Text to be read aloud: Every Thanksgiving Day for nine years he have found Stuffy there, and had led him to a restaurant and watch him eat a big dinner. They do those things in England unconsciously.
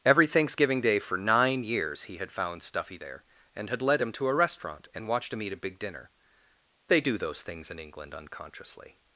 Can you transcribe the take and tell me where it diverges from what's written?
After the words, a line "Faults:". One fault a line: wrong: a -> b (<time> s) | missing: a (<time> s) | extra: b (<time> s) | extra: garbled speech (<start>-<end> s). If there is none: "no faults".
Every Thanksgiving Day for nine years he had found Stuffy there, and had led him to a restaurant and watched him eat a big dinner. They do those things in England unconsciously.
Faults:
wrong: have -> had (2.2 s)
wrong: watch -> watched (5.1 s)